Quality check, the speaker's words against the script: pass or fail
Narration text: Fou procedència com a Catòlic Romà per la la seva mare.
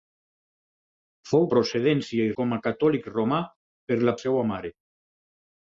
pass